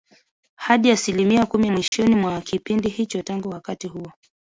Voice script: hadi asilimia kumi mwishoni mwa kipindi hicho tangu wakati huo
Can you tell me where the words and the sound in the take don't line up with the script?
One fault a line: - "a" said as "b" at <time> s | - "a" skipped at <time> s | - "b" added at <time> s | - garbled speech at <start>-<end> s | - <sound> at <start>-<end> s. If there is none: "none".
- dropout at 1.9-1.9 s